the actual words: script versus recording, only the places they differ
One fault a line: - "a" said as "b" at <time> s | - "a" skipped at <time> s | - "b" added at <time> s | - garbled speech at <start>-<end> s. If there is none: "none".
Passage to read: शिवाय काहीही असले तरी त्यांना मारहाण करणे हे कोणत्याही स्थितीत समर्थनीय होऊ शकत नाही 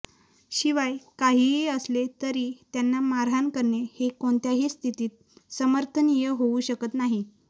none